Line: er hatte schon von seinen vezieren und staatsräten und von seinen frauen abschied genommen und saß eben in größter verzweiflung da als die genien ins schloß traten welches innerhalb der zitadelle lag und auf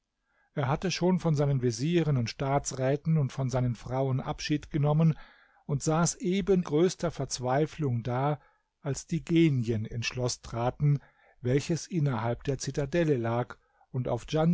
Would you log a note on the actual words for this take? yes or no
yes